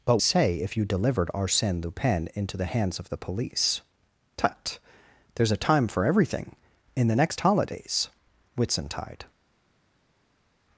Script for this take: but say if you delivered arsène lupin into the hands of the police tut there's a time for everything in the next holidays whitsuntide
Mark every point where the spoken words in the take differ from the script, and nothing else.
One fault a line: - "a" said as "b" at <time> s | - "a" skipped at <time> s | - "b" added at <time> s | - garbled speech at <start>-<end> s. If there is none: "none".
none